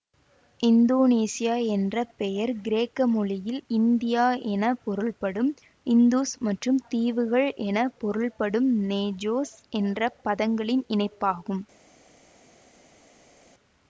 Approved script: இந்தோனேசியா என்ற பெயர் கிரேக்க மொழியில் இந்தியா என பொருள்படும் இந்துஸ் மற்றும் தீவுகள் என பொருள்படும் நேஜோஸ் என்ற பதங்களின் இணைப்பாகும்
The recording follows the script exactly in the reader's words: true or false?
true